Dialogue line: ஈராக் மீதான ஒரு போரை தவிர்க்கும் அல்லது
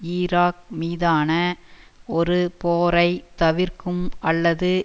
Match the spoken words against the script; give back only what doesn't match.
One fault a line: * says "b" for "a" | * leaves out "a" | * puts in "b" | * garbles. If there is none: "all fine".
all fine